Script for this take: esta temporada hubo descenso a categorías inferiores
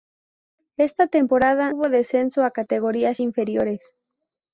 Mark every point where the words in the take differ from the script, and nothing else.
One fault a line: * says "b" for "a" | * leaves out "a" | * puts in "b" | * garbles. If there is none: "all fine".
all fine